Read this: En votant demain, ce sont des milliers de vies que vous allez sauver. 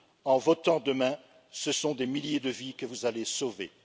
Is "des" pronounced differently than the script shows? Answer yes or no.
no